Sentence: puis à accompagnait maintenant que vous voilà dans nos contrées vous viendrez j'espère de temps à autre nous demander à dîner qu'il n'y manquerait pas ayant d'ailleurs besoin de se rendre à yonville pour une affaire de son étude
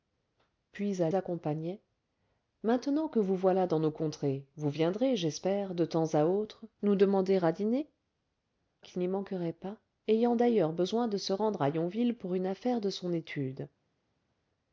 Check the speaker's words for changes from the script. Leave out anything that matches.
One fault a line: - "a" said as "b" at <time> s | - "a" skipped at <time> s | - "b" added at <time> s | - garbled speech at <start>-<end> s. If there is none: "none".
none